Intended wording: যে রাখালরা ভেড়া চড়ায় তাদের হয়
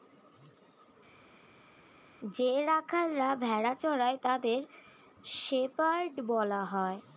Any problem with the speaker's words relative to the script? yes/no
yes